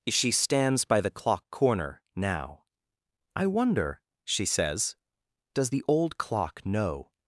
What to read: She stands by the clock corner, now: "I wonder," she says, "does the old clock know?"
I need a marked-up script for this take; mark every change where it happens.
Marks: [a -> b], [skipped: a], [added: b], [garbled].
She stands by the clock corner, now: "I wonder," she says, "does the old clock know?"